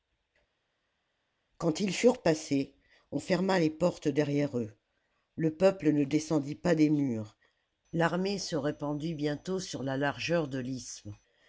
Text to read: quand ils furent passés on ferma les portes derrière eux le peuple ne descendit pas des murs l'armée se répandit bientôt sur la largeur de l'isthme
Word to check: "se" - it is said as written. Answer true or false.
true